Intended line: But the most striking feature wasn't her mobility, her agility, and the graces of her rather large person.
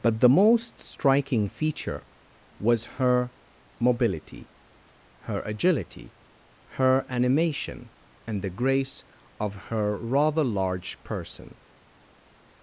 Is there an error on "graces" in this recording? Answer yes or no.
yes